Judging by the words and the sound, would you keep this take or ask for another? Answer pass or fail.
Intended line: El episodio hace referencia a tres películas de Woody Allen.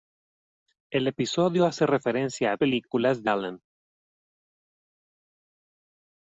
fail